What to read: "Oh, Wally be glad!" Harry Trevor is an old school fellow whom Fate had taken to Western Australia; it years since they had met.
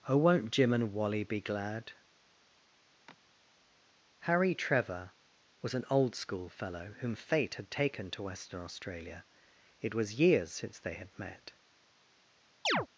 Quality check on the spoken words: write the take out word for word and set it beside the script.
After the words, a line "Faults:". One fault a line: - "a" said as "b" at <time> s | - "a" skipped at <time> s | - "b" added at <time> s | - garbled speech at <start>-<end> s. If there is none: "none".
"Oh, won't Jim and Wally be glad!" Harry Trevor was an old school fellow whom Fate had taken to Western Australia; it was years since they had met.
Faults:
- "won't Jim and" added at 0.2 s
- "is" said as "was" at 5.6 s
- "was" added at 9.9 s